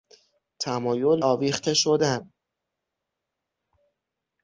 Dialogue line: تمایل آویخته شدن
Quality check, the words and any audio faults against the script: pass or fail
pass